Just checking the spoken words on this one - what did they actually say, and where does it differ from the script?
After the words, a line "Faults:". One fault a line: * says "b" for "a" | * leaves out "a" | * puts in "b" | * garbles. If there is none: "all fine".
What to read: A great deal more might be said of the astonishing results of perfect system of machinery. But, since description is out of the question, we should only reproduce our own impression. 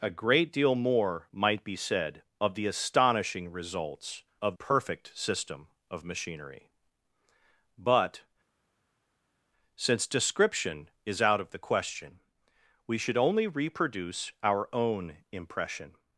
A great deal more might be said of the astonishing results of perfect system of machinery. But, since description is out of the question, we should only reproduce our own impression.
Faults:
all fine